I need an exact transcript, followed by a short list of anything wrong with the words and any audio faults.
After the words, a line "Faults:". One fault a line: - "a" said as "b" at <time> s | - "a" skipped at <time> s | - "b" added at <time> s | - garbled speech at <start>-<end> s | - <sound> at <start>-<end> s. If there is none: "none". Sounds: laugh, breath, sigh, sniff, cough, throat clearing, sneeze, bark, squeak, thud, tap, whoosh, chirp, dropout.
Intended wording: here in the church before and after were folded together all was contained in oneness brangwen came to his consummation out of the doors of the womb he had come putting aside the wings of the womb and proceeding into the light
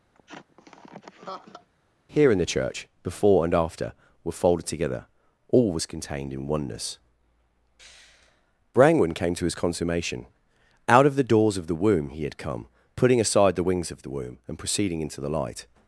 here in the church before and after were folded together all was contained in oneness brangwen came to his consummation out of the doors of the womb he had come putting aside the wings of the womb and proceeding into the light
Faults:
- laugh at 0.1-1.7 s